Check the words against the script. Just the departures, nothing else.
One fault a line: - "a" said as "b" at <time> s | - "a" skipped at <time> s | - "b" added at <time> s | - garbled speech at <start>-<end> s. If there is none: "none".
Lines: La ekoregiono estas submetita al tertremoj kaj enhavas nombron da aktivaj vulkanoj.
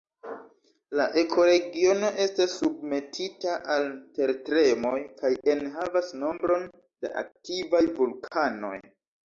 none